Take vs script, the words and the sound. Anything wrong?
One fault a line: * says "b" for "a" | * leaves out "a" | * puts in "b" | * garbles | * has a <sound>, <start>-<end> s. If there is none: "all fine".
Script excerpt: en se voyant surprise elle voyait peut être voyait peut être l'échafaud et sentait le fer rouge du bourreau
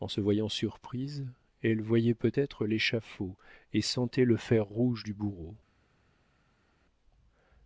* leaves out "voyait peut être"